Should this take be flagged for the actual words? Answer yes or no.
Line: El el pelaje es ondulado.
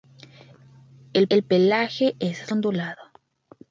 no